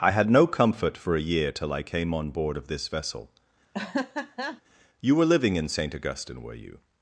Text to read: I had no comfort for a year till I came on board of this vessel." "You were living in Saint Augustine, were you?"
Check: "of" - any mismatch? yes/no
no